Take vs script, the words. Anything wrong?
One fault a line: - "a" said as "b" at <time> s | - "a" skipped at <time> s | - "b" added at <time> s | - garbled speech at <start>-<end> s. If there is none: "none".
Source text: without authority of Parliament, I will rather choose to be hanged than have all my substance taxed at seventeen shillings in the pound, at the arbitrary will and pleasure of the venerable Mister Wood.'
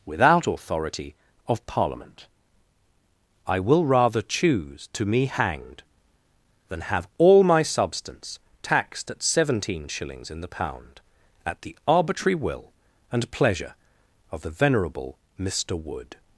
- "be" said as "me" at 5.0 s